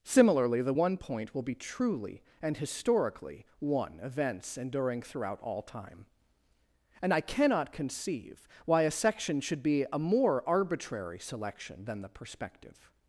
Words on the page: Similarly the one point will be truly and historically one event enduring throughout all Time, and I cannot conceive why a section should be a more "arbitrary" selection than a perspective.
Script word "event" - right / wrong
wrong